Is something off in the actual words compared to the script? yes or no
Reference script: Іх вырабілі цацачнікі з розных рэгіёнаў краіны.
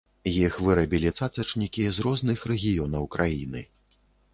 no